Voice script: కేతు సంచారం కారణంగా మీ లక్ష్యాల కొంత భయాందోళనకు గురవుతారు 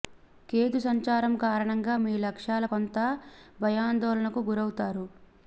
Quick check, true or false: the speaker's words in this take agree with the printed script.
true